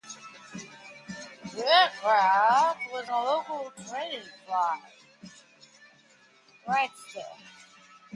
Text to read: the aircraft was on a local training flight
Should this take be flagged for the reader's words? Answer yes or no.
yes